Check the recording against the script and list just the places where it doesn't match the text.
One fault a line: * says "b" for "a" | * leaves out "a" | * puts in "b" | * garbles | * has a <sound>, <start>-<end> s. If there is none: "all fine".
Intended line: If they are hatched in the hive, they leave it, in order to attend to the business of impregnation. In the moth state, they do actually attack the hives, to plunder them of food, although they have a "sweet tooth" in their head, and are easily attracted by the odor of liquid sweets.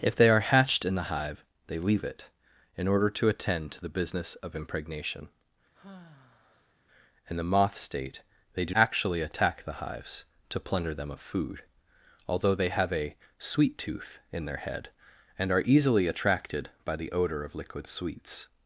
* has a sigh, 5.7-6.7 s